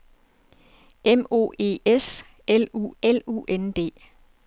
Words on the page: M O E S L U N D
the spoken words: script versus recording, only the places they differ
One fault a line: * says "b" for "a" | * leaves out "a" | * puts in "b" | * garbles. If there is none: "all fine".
* puts in "L U"